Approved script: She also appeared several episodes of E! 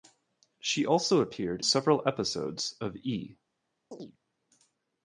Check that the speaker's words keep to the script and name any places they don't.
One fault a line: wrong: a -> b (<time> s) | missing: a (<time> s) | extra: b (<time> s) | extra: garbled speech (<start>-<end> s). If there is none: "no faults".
no faults